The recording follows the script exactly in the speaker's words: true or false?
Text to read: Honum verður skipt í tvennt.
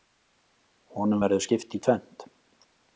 true